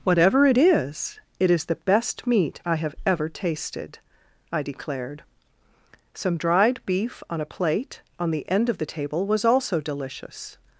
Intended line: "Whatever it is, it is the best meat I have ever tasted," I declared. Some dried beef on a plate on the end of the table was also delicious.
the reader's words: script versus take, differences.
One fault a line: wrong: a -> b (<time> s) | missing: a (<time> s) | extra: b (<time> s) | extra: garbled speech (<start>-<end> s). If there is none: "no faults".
no faults